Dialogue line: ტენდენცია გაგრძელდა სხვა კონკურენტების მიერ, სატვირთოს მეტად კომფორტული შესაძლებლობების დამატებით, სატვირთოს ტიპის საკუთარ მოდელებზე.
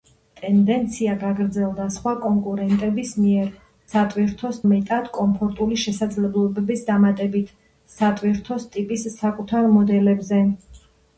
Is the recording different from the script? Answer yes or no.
no